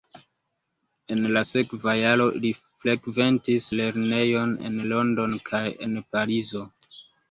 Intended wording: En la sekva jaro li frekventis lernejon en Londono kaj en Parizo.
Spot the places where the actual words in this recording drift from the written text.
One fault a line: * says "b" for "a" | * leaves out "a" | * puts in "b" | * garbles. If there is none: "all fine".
all fine